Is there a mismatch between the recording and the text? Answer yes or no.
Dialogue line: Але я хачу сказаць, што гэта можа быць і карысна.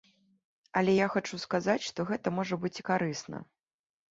no